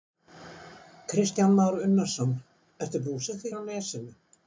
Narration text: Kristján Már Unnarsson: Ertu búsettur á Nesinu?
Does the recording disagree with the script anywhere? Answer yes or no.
no